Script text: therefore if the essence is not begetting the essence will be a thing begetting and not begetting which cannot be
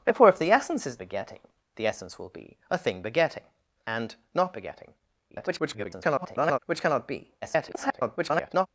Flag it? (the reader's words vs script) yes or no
yes